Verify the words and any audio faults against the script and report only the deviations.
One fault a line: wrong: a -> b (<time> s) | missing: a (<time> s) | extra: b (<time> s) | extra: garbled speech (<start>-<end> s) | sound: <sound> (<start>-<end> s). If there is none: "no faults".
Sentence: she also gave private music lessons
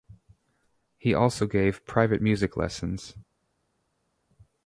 wrong: she -> he (1.0 s)